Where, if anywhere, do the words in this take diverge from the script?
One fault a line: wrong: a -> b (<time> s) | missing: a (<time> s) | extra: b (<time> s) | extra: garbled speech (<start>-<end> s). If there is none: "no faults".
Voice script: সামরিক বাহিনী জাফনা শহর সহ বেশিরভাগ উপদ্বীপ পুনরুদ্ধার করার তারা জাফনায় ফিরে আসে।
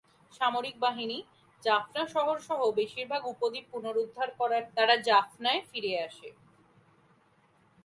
no faults